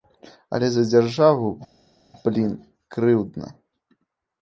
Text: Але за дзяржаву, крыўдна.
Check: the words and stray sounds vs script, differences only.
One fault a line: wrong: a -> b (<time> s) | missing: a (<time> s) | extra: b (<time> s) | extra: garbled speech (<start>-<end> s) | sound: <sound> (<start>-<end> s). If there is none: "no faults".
extra: блін (2.3 s)